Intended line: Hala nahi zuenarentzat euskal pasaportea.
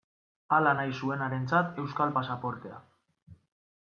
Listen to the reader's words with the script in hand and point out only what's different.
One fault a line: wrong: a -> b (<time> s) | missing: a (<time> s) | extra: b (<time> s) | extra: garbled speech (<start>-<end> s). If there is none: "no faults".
no faults